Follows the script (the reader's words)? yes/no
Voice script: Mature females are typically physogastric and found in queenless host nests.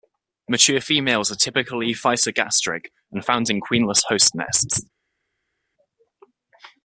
yes